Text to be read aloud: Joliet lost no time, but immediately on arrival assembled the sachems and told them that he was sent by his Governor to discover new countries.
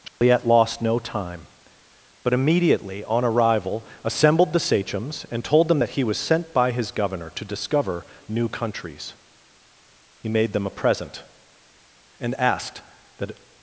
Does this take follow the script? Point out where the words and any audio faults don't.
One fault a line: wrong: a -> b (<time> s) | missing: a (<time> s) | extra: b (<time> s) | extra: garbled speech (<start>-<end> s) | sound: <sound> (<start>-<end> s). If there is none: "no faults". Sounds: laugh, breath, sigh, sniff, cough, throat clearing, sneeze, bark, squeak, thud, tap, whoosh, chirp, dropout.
sound: dropout (0.1-0.2 s)
extra: He made them a present and asked that (10.2 s)